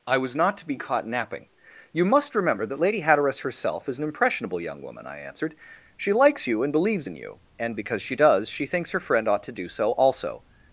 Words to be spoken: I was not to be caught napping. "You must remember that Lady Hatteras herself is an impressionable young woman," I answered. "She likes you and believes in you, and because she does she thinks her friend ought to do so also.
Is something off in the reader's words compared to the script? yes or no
no